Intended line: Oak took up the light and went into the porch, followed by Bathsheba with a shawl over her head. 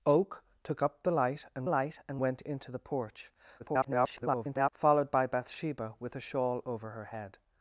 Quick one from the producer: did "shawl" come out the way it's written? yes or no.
yes